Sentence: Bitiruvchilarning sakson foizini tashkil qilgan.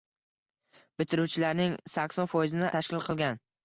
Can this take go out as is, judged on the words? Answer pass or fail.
pass